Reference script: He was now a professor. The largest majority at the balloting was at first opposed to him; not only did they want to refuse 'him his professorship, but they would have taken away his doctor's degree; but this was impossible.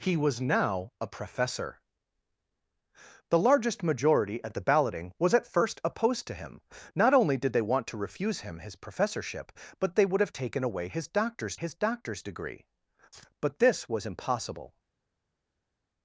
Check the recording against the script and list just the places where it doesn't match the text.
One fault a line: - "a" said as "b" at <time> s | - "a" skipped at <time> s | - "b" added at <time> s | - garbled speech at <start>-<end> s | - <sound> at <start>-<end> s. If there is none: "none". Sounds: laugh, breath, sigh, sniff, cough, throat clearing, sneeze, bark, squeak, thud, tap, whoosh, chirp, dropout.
- "his doctor's" added at 11.5 s